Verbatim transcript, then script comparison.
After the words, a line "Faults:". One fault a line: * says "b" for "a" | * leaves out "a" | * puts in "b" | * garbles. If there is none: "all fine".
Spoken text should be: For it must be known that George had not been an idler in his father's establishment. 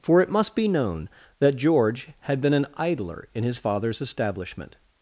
For it must be known that George had been an idler in his father's establishment.
Faults:
* leaves out "not"